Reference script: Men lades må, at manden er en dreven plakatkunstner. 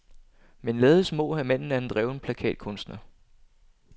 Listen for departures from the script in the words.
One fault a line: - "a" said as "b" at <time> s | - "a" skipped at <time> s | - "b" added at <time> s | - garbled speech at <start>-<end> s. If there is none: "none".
none